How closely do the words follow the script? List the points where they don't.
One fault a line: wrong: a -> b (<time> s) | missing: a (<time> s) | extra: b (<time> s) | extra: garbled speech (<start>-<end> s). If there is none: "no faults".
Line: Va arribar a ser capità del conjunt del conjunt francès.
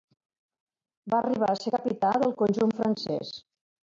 missing: del conjunt (2.8 s)